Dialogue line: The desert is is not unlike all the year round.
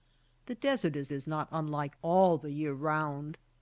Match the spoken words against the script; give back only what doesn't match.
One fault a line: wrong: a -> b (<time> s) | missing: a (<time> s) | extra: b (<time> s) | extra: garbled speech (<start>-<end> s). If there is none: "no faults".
no faults